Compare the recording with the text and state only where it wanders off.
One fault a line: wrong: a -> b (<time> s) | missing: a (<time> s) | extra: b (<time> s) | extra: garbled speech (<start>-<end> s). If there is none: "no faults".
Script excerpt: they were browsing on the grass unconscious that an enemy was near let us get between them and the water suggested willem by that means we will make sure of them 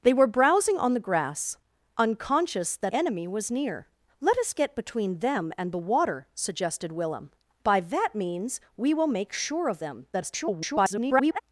missing: an (2.9 s)
extra: garbled speech (10.1-11.4 s)